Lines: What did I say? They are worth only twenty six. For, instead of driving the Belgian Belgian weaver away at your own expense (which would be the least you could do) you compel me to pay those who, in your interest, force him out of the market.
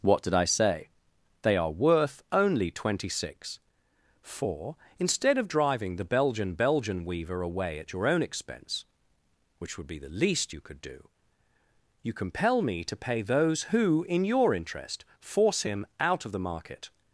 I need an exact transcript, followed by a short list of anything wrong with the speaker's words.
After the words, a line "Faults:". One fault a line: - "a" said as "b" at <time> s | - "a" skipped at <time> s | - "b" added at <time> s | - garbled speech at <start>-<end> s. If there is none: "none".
What did I say? They are worth only twenty six. For, instead of driving the Belgian Belgian weaver away at your own expense (which would be the least you could do) you compel me to pay those who, in your interest, force him out of the market.
Faults:
none